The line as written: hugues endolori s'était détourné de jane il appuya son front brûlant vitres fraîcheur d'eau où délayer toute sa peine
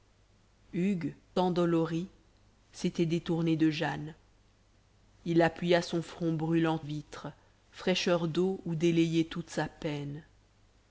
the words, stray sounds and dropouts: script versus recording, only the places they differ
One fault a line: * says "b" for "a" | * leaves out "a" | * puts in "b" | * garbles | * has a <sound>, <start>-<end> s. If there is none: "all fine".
all fine